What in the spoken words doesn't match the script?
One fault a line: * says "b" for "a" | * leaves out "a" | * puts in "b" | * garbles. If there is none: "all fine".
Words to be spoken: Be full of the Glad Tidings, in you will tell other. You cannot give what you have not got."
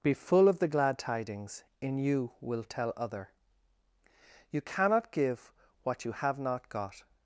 all fine